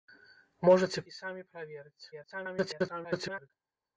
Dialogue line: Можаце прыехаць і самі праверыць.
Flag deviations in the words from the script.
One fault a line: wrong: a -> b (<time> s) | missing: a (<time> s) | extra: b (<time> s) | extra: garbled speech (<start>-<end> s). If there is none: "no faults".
missing: прыехаць (1.0 s)
extra: garbled speech (2.1-3.5 s)